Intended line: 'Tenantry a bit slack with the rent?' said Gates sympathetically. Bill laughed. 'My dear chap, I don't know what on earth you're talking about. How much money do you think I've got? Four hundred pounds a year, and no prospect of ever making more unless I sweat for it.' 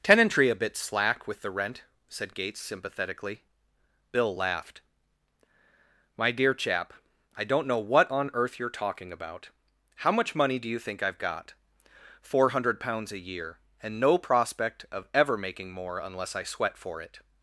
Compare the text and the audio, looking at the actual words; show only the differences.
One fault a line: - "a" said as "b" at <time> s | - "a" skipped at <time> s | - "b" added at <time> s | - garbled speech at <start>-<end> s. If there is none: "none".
none